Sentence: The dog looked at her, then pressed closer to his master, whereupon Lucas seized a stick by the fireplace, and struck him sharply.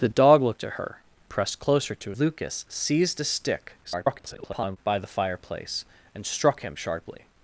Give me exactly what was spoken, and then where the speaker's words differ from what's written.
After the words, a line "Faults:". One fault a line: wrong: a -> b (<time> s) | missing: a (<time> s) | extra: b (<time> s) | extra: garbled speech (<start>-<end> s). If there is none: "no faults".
The dog looked at her, pressed closer to Lucas seized a stick [garbled] by the fireplace, and struck him sharply.
Faults:
missing: then (1.0 s)
missing: his master whereupon (2.1 s)
extra: garbled speech (3.8-4.8 s)